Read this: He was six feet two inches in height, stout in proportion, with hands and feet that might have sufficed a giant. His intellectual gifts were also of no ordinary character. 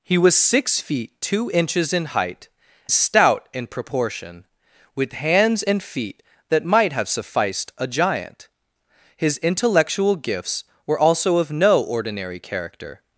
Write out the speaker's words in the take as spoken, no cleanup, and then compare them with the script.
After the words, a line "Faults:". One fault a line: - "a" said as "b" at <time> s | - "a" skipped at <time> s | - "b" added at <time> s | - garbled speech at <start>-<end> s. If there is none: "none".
He was six feet two inches in height, stout in proportion, with hands and feet that might have sufficed a giant. His intellectual gifts were also of no ordinary character.
Faults:
none